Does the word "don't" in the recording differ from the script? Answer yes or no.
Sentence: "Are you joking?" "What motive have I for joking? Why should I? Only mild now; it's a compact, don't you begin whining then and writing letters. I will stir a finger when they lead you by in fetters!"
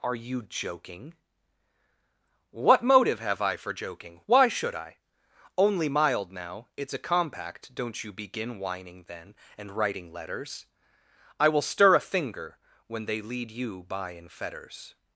no